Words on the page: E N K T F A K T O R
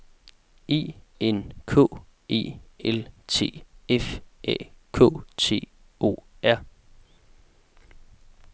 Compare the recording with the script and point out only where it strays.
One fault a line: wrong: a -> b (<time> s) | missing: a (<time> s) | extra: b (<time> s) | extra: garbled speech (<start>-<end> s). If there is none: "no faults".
extra: E L (2.3 s)